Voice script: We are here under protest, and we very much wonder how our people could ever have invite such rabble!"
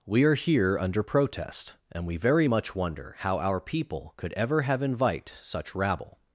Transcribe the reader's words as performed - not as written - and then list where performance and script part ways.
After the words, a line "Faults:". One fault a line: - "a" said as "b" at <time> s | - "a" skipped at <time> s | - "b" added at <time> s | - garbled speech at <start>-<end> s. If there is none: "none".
We are here under protest, and we very much wonder how our people could ever have invite such rabble!"
Faults:
none